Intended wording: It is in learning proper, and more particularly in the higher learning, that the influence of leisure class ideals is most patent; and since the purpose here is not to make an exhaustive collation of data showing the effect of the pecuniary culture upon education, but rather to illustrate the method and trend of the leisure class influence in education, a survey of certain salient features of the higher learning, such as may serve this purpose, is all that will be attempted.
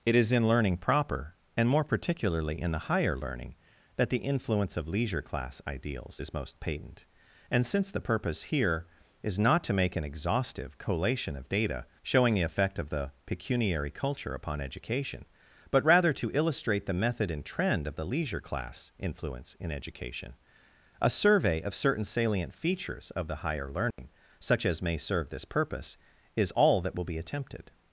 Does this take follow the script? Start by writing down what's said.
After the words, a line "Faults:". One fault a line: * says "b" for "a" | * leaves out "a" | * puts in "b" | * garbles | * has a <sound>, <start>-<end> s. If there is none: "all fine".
It is in learning proper, and more particularly in the higher learning, that the influence of leisure class ideals is most patent; and since the purpose here is not to make an exhaustive collation of data showing the effect of the pecuniary culture upon education, but rather to illustrate the method and trend of the leisure class influence in education, a survey of certain salient features of the higher learning, such as may serve this purpose, is all that will be attempted.
Faults:
* has a dropout, 23.9-24.0 s